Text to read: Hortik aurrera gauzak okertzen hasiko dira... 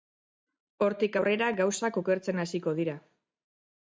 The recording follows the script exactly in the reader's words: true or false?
true